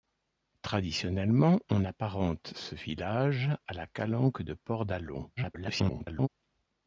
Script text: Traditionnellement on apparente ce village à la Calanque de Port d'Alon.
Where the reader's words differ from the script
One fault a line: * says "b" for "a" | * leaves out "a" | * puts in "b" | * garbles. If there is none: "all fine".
* garbles